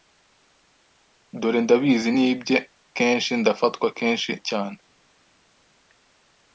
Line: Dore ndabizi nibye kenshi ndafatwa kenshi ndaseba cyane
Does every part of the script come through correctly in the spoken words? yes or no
no